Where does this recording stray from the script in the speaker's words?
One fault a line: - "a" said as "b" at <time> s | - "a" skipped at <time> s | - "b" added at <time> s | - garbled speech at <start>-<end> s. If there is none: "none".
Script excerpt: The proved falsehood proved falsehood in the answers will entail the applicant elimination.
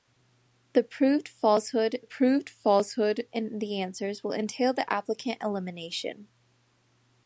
none